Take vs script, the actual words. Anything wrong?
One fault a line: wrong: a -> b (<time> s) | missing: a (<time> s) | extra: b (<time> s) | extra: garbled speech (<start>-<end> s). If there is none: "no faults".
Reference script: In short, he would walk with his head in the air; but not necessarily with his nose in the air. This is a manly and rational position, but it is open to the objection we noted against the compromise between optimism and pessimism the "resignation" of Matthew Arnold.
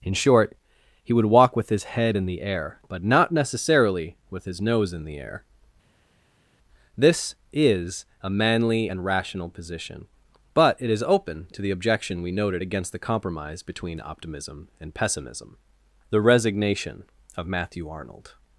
no faults